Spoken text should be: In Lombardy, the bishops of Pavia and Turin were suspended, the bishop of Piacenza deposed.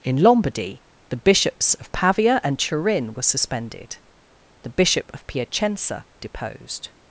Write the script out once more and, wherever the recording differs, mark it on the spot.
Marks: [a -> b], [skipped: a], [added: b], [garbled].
In Lombardy, the bishops of Pavia and Turin were suspended, the bishop of Piacenza deposed.